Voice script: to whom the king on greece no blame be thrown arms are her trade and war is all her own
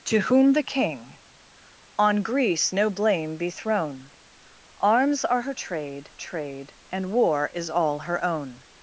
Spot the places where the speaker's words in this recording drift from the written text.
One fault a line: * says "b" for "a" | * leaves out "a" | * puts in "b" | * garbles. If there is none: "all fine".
* puts in "trade"